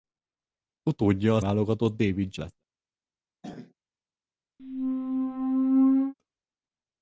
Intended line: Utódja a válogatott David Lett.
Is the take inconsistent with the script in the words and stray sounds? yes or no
yes